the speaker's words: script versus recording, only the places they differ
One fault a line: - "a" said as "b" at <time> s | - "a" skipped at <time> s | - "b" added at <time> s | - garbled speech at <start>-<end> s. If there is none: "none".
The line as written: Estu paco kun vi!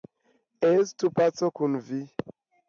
none